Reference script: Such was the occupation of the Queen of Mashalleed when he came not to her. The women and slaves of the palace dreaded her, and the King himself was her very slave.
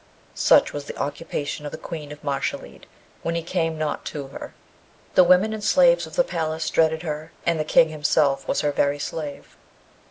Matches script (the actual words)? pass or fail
pass